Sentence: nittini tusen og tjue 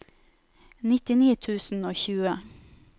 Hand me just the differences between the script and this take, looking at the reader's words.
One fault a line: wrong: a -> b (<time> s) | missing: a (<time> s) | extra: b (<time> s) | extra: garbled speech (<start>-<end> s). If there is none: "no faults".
no faults